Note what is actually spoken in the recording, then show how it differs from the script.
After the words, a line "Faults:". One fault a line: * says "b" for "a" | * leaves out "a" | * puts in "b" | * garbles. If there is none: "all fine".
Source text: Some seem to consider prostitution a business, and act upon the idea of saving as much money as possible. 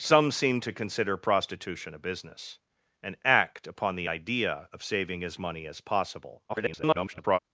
Some seem to consider prostitution a business, and act upon the idea of saving as money as possible. [garbled]
Faults:
* leaves out "much"
* garbles